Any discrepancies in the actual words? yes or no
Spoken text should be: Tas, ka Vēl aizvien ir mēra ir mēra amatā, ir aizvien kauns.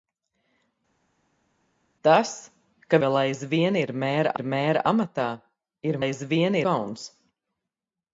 no